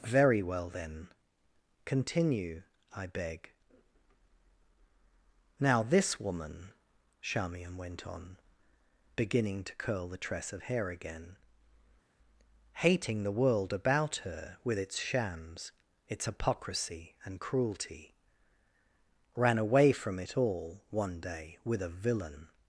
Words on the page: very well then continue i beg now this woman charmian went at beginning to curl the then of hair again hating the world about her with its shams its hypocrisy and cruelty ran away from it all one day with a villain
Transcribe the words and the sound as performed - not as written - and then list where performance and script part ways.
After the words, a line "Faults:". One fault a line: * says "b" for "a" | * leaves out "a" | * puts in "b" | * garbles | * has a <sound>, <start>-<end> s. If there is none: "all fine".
very well then continue i beg now this woman charmian went on beginning to curl the tress of hair again hating the world about her with its shams its hypocrisy and cruelty ran away from it all one day with a villain
Faults:
* says "on" for "at"
* says "tress" for "then"